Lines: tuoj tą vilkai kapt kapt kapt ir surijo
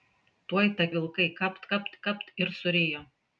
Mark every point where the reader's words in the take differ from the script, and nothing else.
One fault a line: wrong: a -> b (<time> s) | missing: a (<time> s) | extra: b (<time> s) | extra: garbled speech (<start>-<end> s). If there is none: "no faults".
no faults